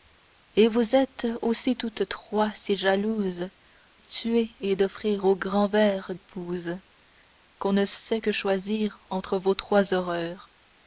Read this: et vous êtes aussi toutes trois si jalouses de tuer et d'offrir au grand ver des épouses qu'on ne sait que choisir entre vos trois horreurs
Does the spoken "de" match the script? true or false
false